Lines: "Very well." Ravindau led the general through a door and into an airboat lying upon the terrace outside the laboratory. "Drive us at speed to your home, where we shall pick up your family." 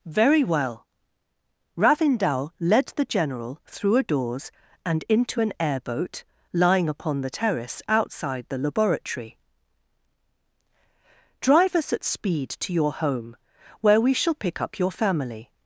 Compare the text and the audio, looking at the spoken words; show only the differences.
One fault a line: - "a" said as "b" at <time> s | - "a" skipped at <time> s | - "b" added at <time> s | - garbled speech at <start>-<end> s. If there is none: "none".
- "door" said as "doors" at 4.0 s